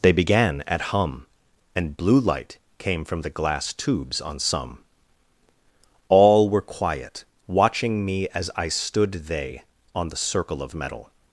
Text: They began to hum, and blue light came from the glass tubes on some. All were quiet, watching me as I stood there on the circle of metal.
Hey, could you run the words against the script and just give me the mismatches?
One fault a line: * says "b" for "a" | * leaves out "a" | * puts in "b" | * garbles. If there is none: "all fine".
* says "at" for "to"
* says "they" for "there"